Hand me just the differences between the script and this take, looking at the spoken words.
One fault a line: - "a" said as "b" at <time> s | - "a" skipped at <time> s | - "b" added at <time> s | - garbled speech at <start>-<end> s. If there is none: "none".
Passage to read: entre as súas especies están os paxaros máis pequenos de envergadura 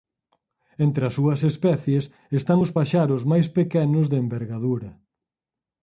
none